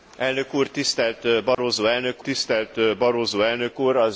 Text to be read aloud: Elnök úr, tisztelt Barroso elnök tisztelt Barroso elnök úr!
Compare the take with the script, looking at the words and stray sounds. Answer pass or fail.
fail